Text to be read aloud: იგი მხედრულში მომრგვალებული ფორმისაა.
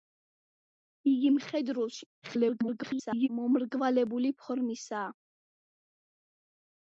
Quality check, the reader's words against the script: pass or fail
fail